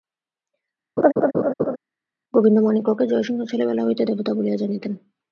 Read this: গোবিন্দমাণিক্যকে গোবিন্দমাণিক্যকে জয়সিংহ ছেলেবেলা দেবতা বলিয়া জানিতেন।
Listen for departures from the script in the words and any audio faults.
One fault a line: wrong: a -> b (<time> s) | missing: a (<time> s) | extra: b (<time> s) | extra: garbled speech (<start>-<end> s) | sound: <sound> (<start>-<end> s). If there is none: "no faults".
sound: laugh (1.0-1.8 s)
missing: গোবিন্দমাণিক্যকে (3.0 s)
extra: হইতে (3.8 s)